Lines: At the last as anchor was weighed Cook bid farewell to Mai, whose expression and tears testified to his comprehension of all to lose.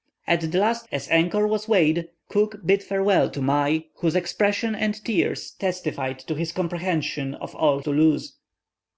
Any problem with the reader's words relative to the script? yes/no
no